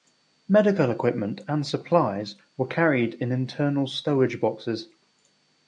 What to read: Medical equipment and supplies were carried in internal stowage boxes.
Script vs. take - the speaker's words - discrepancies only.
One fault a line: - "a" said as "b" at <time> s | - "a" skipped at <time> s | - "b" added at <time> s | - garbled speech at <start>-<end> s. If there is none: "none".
none